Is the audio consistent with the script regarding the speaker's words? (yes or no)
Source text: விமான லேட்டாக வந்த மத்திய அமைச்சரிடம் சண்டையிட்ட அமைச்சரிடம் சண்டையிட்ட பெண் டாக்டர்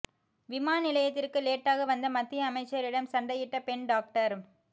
no